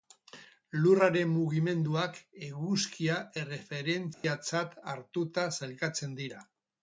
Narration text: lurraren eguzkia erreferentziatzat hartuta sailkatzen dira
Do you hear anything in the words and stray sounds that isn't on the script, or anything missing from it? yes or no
yes